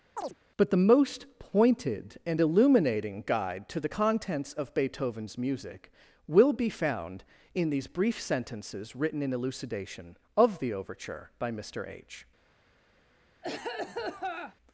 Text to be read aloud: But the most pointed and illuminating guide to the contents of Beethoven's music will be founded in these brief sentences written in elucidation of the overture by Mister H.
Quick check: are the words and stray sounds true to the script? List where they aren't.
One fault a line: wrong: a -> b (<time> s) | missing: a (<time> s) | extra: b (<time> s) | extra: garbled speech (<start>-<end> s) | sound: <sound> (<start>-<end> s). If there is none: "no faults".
sound: chirp (0.2-0.4 s)
wrong: founded -> found (6.7 s)
sound: cough (13.4-14.6 s)